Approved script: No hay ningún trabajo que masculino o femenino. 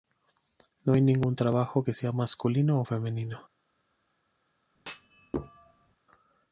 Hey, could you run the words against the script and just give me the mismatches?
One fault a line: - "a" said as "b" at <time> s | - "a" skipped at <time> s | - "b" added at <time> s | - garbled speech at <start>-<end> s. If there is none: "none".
- "sea" added at 1.9 s